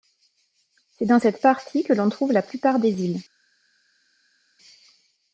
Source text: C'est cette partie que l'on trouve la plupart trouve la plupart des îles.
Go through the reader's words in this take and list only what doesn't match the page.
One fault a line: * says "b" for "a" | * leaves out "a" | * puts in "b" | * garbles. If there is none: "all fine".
* puts in "dans"
* leaves out "trouve la plupart"